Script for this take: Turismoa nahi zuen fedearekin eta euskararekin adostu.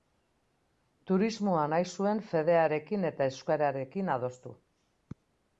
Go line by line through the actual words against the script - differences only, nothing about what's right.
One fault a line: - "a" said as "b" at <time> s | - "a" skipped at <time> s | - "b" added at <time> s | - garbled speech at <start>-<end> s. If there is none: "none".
none